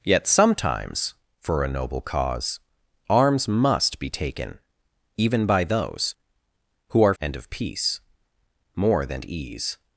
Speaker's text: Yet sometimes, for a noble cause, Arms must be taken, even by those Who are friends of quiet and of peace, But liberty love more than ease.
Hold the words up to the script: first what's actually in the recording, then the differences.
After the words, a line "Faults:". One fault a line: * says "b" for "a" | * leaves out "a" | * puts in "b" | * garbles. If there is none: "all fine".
Yet sometimes, for a noble cause, Arms must be taken, even by those Who are and of peace, More than ease.
Faults:
* leaves out "friends of quiet"
* leaves out "But liberty love"